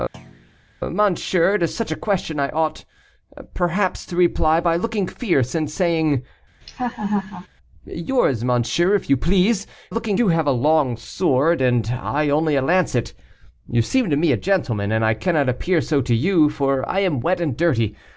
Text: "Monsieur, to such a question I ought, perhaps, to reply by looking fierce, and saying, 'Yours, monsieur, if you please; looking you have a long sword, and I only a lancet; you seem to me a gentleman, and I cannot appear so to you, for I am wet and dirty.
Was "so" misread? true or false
false